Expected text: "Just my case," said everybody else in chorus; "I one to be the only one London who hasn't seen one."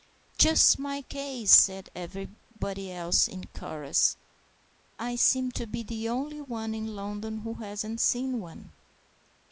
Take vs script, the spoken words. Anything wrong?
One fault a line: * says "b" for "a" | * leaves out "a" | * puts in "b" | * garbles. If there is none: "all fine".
* says "seem" for "one"
* puts in "in"